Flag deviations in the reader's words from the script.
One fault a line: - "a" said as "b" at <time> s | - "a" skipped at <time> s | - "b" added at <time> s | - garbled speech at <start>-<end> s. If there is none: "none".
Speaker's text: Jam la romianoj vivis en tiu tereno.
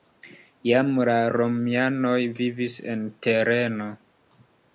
- "tiu" skipped at 3.0 s